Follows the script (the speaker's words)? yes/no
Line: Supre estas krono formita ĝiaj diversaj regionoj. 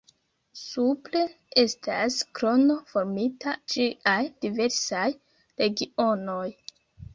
yes